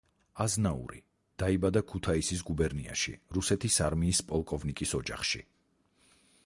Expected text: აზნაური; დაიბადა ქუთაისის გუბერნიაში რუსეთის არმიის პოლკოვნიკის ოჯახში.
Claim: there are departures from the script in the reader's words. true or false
false